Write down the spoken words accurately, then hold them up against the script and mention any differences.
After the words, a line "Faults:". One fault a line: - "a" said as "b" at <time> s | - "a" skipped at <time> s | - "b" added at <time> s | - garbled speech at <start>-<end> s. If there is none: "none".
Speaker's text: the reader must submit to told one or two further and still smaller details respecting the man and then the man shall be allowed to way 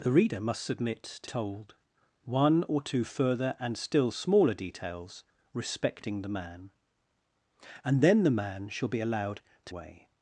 the reader must submit to told one or two further and still smaller details respecting the man and then the man shall be allowed to way
Faults:
none